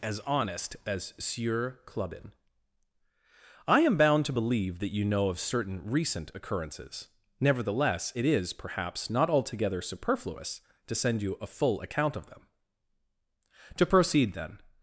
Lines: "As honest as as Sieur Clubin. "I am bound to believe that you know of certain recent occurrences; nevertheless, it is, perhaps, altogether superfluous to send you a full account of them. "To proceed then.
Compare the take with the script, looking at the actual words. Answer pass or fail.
fail